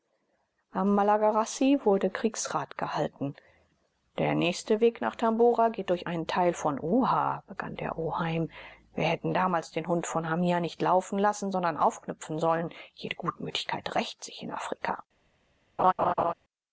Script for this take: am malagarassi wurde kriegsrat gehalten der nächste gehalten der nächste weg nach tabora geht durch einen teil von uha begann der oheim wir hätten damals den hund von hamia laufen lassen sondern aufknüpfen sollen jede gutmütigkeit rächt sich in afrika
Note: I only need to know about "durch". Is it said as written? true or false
true